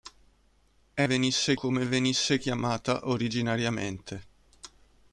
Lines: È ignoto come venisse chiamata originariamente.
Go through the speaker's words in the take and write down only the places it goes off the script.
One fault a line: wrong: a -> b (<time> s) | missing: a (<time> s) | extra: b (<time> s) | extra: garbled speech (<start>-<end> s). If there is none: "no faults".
wrong: ignoto -> venisse (1.0 s)